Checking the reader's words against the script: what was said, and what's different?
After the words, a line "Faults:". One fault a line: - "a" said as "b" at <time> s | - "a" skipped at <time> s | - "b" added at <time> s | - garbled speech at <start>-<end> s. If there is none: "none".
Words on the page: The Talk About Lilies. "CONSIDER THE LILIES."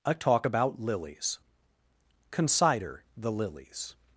A Talk About Lilies. "CONSIDER THE LILIES."
Faults:
- "The" said as "A" at 0.0 s